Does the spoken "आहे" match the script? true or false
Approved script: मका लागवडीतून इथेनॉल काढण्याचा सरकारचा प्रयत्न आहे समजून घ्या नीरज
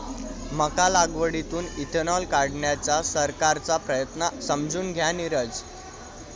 false